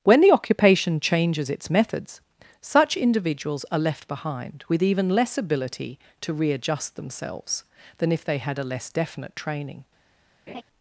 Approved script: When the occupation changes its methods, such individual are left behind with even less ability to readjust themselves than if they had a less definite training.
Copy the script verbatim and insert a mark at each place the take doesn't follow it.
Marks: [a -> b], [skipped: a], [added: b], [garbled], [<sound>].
When the occupation changes its methods, such [individual -> individuals] are left behind with even less ability to readjust themselves than if they had a less definite training. [laugh]